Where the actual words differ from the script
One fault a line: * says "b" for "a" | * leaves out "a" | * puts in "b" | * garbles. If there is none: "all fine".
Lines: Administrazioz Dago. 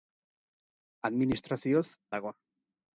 all fine